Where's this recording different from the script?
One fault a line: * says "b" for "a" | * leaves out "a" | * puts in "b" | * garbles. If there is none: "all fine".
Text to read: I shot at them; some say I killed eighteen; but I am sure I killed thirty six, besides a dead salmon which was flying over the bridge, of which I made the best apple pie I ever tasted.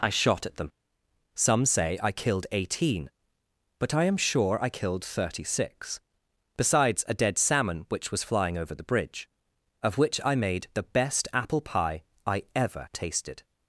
all fine